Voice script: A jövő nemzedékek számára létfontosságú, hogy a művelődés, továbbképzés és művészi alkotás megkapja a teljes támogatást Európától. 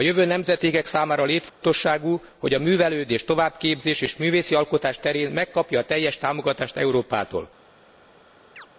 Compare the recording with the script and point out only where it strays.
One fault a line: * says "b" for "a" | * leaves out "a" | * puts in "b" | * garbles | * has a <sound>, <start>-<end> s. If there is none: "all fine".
* has a dropout, 1.5-1.6 s
* puts in "terén"
* has a chirp, 8.6-8.7 s